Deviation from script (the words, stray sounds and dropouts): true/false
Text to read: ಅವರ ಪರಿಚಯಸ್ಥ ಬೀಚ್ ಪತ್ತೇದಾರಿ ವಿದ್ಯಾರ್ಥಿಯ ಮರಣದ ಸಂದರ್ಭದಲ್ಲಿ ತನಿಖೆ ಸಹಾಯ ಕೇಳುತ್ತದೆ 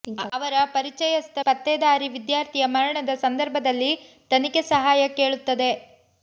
true